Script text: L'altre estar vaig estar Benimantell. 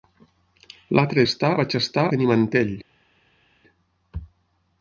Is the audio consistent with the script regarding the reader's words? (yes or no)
yes